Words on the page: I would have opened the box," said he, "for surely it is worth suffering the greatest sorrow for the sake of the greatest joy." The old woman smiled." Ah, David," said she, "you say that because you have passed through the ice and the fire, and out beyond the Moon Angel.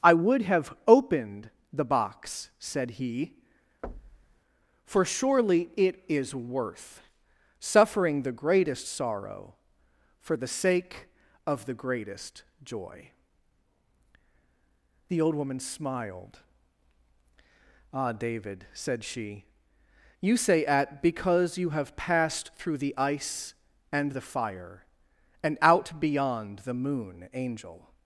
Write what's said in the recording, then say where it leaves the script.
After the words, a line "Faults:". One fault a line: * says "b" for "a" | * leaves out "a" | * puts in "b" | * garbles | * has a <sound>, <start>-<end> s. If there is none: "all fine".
I would have opened the box," said he, "for surely it is worth suffering the greatest sorrow for the sake of the greatest joy." The old woman smiled." Ah, David," said she, "you say at because you have passed through the ice and the fire, and out beyond the Moon Angel.
Faults:
* has a thud, 3.8-4.4 s
* says "at" for "that"